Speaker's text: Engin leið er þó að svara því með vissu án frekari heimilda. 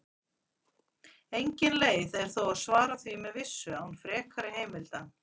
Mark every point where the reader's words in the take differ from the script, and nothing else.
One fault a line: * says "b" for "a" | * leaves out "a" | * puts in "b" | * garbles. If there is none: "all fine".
all fine